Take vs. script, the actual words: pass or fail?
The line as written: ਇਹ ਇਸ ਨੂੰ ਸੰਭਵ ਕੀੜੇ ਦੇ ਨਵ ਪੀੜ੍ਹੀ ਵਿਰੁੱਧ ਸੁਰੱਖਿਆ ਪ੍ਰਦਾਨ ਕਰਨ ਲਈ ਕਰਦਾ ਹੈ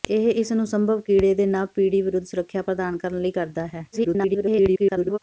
fail